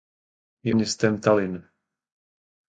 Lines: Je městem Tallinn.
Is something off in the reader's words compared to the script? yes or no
no